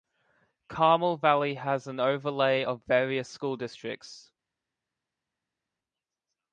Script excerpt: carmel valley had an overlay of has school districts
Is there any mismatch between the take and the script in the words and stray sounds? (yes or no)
yes